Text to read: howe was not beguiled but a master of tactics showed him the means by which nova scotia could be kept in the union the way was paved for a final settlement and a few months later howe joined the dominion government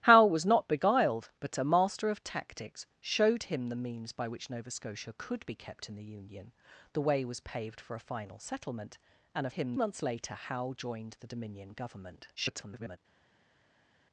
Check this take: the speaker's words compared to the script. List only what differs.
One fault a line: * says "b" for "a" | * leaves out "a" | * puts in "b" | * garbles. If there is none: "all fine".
* says "him" for "few"
* garbles